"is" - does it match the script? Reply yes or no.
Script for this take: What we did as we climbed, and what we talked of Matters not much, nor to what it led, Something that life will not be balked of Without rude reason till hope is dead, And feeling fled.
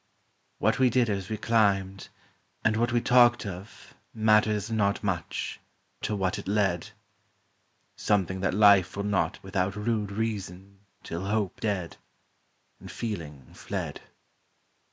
no